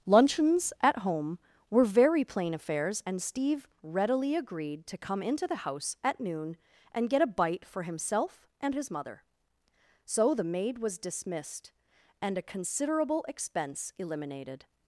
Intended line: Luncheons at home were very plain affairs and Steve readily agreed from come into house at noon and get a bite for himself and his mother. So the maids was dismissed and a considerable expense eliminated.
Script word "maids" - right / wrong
wrong